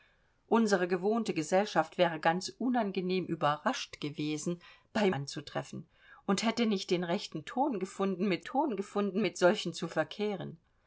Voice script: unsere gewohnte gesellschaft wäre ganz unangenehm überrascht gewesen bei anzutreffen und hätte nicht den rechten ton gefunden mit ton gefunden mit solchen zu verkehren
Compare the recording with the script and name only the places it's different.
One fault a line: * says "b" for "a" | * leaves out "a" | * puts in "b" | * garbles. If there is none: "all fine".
all fine